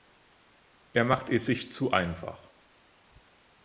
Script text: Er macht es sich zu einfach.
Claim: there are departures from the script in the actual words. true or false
false